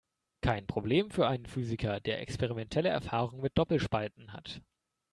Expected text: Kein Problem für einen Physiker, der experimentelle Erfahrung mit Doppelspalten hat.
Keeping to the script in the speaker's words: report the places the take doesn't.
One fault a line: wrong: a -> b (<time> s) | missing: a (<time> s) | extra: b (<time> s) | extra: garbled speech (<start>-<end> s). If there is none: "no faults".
no faults